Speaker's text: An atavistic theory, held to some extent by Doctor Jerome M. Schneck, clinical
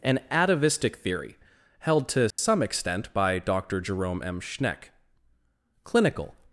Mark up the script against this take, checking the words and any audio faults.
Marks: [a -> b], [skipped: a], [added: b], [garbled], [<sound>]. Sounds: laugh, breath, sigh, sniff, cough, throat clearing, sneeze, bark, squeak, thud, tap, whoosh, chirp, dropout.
An atavistic theory, held to some [dropout] extent by Doctor Jerome M. Schneck, clinical